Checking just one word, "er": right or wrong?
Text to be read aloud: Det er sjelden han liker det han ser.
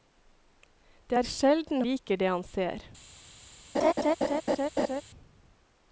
right